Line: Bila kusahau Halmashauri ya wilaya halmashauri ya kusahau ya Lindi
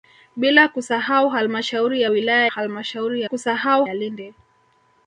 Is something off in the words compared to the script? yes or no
no